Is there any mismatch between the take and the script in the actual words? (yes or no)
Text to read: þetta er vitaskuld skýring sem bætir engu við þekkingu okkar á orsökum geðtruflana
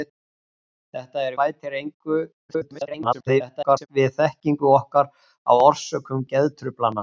yes